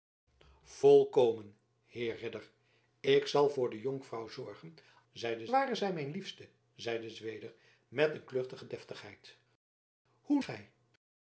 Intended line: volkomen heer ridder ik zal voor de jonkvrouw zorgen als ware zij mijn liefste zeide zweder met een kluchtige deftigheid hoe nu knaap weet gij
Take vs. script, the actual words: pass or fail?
fail